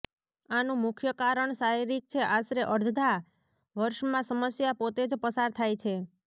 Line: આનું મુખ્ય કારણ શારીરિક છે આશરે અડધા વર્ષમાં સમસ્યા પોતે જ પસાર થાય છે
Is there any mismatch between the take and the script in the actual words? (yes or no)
no